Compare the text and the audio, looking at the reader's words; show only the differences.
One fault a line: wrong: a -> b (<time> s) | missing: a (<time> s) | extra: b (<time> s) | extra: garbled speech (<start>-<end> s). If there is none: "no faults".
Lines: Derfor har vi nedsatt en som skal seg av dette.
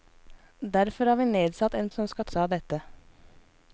no faults